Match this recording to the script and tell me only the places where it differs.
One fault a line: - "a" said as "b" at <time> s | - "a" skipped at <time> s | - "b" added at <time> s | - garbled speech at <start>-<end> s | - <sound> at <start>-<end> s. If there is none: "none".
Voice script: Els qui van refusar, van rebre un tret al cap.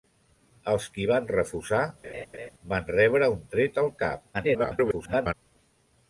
- laugh at 2.0-2.5 s
- garbled speech at 4.3-5.3 s